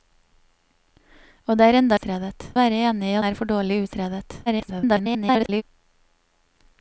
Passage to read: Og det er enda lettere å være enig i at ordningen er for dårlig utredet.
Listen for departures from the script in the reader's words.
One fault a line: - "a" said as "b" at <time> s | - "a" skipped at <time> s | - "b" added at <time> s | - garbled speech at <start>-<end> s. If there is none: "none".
- "lettere" said as "utredet" at 1.9 s
- "at ordningen" skipped at 3.2 s
- garbled speech at 4.5-5.6 s